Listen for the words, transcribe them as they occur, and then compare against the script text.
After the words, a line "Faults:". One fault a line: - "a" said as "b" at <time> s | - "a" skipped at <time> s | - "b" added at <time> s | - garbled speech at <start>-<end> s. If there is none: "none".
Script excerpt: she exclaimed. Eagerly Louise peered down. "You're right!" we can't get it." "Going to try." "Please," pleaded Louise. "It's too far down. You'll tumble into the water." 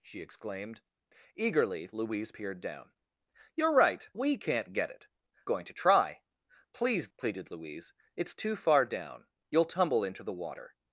she exclaimed. Eagerly Louise peered down. "You're right!" we can't get it." "Going to try." "Please," pleaded Louise. "It's too far down. You'll tumble into the water."
Faults:
none